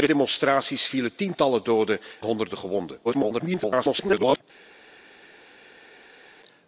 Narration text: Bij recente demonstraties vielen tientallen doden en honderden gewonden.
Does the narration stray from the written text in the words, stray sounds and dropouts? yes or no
yes